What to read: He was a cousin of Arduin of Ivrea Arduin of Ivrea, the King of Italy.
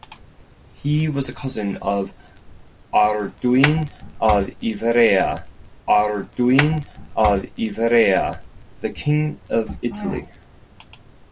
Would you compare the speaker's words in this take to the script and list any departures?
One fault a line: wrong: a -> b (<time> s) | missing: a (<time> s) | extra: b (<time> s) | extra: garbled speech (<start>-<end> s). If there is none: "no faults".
no faults